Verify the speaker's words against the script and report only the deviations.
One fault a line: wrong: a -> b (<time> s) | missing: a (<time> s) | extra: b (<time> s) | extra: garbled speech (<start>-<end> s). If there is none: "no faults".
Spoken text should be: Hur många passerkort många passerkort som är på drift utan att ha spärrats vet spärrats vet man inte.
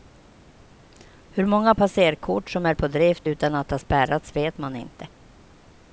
missing: många passerkort (2.5 s)
missing: spärrats vet (4.6 s)